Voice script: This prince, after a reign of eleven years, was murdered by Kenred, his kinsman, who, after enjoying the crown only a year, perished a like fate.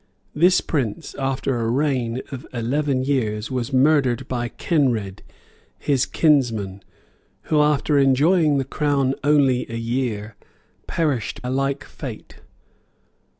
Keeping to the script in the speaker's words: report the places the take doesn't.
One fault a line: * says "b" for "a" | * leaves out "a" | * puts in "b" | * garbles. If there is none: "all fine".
all fine